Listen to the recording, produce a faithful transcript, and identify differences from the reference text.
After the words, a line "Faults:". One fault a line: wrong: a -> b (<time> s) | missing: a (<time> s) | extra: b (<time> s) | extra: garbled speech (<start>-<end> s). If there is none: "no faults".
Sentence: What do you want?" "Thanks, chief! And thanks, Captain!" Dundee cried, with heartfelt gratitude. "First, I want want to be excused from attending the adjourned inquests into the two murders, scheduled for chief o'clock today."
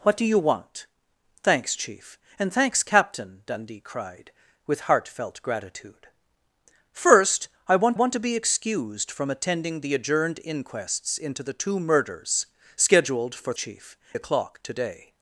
What do you want?" "Thanks, chief! And thanks, Captain!" Dundee cried, with heartfelt gratitude. "First, I want want to be excused from attending the adjourned inquests into the two murders, scheduled for chief o'clock today."
Faults:
no faults